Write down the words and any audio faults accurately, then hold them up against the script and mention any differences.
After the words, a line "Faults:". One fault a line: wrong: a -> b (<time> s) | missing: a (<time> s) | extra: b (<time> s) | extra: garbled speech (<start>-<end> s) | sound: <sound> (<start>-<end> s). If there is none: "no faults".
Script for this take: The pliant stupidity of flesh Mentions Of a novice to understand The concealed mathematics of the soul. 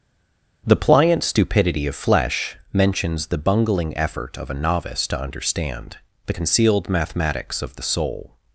The pliant stupidity of flesh Mentions the bungling effort Of a novice to understand The concealed mathematics of the soul.
Faults:
extra: the bungling effort (3.3 s)